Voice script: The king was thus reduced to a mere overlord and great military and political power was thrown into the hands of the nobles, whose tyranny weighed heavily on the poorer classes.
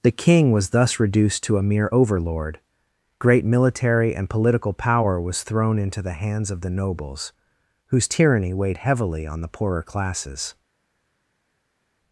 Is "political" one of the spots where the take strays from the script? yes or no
no